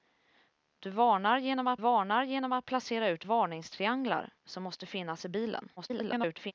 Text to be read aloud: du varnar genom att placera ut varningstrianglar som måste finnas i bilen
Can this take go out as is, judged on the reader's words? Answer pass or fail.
fail